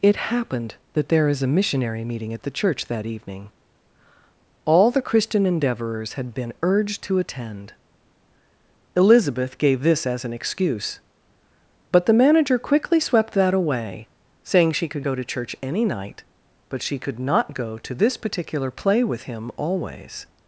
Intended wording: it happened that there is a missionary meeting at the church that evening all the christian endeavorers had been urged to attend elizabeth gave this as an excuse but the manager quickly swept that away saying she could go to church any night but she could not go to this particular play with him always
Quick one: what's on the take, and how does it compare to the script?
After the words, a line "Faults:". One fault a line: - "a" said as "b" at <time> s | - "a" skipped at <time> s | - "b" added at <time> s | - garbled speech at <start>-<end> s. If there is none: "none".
it happened that there is a missionary meeting at the church that evening all the christian endeavorers had been urged to attend elizabeth gave this as an excuse but the manager quickly swept that away saying she could go to church any night but she could not go to this particular play with him always
Faults:
none